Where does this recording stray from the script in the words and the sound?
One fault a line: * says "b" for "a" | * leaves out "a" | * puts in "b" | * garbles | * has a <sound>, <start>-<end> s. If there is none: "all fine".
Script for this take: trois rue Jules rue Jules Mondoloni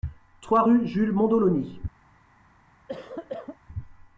* leaves out "rue Jules"
* has a cough, 2.9-3.6 s